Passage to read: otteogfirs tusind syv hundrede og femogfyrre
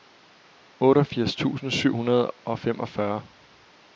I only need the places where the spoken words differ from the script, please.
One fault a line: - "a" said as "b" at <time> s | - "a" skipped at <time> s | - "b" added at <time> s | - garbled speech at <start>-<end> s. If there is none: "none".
none